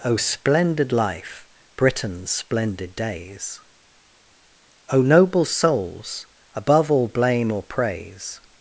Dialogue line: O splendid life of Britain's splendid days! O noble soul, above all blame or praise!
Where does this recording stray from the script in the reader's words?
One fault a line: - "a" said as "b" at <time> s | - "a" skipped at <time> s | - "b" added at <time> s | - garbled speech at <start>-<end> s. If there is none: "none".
- "of" skipped at 1.5 s
- "soul" said as "souls" at 5.4 s